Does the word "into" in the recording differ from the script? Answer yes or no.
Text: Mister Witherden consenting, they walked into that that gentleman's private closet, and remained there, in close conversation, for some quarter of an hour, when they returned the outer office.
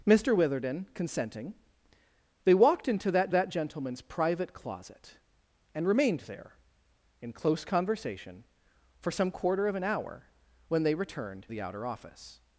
no